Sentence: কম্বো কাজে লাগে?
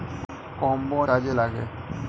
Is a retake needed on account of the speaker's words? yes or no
no